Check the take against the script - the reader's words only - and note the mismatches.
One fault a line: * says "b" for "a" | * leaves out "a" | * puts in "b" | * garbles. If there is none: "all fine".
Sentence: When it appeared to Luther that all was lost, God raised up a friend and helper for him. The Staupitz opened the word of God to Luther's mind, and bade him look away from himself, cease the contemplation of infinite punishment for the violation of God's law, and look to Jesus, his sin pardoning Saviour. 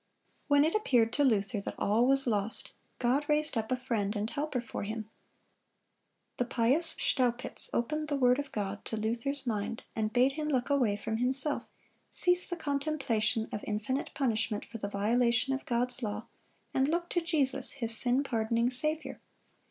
* puts in "pious"